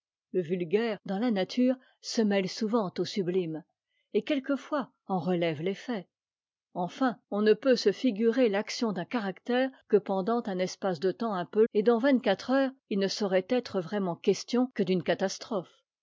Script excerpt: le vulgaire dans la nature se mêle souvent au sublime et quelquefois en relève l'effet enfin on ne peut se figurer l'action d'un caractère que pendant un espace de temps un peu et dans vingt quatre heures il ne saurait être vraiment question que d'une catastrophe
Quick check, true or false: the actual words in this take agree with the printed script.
true